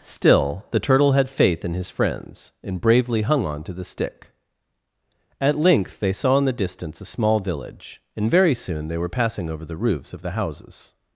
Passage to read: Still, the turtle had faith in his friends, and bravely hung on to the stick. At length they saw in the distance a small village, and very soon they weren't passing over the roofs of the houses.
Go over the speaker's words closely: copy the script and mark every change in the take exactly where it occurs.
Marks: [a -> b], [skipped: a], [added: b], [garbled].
Still, the turtle had faith in his friends, and bravely hung on to the stick. At length they saw in the distance a small village, and very soon they [weren't -> were] passing over the roofs of the houses.